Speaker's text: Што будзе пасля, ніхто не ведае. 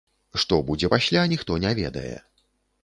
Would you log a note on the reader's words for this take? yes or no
no